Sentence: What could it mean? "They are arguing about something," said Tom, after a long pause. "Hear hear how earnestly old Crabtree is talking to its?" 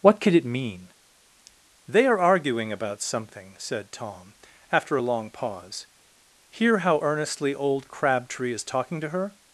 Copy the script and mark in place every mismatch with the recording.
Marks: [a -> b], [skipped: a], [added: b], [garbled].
What could it mean? "They are arguing about something," said Tom, after a long pause. "Hear [skipped: hear] how earnestly old Crabtree is talking to [its?" -> her]